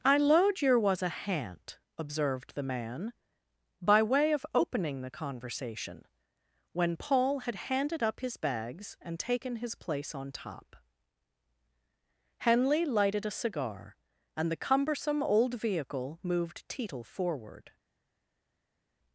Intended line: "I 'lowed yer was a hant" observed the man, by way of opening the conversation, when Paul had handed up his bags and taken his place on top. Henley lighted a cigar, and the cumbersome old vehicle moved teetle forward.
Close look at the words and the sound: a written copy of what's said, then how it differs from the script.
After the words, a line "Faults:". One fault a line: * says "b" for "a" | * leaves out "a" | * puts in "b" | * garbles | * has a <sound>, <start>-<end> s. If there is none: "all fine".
"I 'lowed yer was a hant" observed the man, by way of opening the conversation, when Paul had handed up his bags and taken his place on top. Henley lighted a cigar, and the cumbersome old vehicle moved teetle forward.
Faults:
all fine